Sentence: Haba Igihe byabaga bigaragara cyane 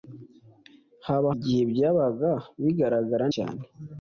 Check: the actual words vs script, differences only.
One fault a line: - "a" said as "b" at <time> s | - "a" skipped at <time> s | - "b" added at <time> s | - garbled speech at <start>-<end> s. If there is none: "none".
none